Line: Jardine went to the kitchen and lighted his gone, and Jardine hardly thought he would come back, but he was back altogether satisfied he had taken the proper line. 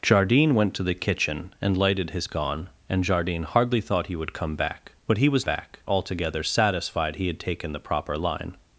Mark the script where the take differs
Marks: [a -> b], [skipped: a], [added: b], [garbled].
Jardine went to the kitchen and lighted his gone, and Jardine hardly thought he would come back, but he was back altogether satisfied he had taken the proper line.